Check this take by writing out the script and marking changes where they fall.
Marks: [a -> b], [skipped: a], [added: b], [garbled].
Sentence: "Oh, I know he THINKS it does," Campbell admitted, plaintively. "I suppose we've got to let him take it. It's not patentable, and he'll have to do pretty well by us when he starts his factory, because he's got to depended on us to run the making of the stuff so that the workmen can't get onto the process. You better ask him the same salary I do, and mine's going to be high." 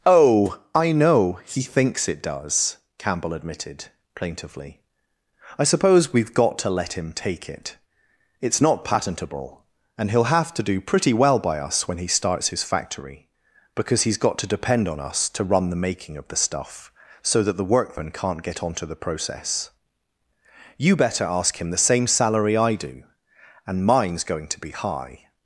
"Oh, I know he THINKS it does," Campbell admitted, plaintively. "I suppose we've got to let him take it. It's not patentable, and he'll have to do pretty well by us when he starts his factory, because he's got to [depended -> depend] on us to run the making of the stuff so that the workmen can't get onto the process. You better ask him the same salary I do, and mine's going to be high."